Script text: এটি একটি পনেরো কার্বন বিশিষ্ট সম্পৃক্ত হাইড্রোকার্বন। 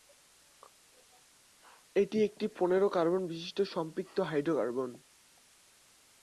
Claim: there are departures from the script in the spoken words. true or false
false